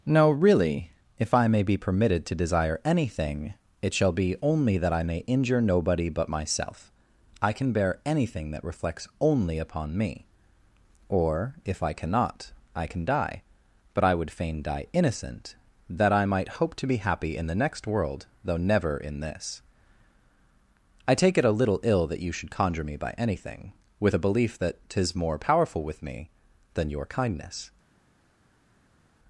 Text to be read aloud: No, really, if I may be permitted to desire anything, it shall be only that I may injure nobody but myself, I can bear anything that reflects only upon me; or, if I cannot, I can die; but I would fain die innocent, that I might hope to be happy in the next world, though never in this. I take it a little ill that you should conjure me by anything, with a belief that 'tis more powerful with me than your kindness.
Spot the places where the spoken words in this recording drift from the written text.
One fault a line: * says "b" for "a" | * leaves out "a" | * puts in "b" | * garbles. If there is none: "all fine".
all fine